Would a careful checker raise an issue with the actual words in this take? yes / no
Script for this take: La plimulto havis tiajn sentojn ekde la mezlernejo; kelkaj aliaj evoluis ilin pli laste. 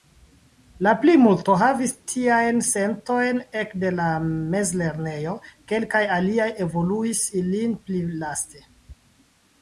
no